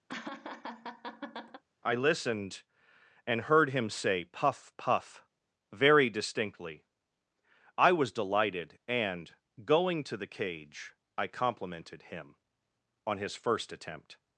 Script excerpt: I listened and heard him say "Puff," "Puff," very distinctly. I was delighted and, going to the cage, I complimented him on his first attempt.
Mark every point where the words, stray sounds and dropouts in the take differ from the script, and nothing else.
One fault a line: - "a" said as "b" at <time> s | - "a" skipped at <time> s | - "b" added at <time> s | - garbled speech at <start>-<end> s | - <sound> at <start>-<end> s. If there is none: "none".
- laugh at 0.1-1.6 s